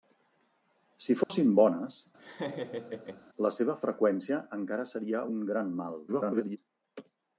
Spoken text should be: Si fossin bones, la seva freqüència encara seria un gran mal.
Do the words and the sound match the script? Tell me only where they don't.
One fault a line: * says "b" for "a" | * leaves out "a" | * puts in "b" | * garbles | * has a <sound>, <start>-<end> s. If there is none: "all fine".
* has a dropout, 1.2-1.3 s
* has a laugh, 2.2-3.3 s
* garbles